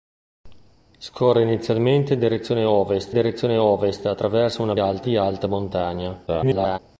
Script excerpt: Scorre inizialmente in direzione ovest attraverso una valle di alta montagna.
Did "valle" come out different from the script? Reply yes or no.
yes